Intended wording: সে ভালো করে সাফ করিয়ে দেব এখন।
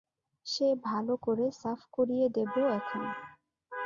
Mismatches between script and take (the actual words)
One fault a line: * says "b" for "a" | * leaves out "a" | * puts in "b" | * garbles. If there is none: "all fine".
all fine